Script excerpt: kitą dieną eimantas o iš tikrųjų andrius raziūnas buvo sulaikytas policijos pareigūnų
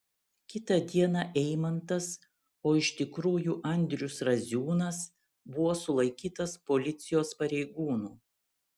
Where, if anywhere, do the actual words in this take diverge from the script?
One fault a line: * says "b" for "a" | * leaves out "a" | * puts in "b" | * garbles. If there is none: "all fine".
all fine